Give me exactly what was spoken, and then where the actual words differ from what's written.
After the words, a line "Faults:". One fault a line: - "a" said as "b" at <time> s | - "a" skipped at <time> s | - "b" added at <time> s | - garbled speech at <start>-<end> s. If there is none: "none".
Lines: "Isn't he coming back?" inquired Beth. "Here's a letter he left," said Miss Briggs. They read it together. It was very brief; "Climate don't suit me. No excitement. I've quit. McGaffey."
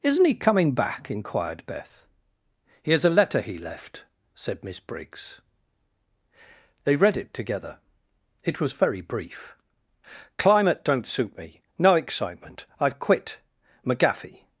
"Isn't he coming back?" inquired Beth. "Here's a letter he left," said Miss Briggs. They read it together. It was very brief; "Climate don't suit me. No excitement. I've quit. McGaffey."
Faults:
none